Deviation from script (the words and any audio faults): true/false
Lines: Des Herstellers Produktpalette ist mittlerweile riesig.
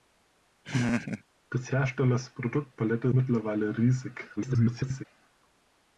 true